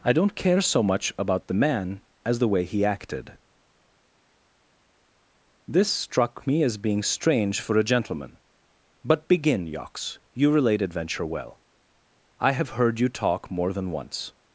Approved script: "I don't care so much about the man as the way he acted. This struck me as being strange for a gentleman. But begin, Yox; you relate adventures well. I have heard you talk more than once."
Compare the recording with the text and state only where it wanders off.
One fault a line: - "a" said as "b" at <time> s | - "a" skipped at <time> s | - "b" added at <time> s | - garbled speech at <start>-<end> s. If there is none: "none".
- "adventures" said as "adventure" at 10.8 s